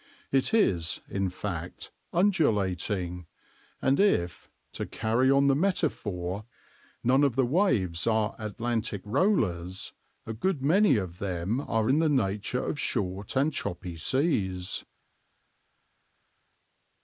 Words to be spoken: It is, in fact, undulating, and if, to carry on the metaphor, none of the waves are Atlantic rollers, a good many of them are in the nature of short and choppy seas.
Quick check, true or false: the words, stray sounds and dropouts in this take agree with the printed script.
true